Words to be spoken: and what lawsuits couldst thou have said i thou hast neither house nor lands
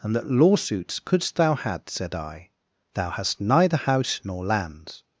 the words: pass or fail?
fail